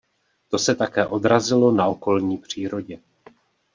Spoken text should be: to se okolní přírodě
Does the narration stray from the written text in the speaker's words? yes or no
yes